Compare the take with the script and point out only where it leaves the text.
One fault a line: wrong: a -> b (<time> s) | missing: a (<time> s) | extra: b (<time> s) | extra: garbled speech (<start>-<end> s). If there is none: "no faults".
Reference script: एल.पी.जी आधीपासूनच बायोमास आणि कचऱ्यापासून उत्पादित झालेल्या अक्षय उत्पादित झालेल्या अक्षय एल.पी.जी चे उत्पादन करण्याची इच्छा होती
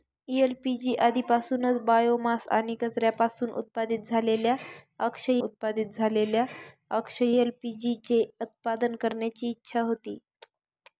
no faults